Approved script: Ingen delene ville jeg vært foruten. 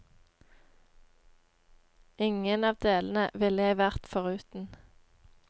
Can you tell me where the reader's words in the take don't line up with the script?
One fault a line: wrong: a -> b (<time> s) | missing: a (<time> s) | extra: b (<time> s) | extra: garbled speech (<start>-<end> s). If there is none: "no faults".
extra: av (2.7 s)